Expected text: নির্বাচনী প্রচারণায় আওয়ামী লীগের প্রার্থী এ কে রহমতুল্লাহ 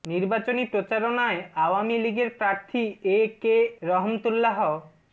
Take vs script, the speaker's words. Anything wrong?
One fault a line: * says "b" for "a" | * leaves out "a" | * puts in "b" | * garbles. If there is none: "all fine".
all fine